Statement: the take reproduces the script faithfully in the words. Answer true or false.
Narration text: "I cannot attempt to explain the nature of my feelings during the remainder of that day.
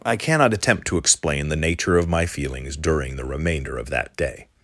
true